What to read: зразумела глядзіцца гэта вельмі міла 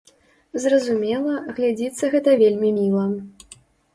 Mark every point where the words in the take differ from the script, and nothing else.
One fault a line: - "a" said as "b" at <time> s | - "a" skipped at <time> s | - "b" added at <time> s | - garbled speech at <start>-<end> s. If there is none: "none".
none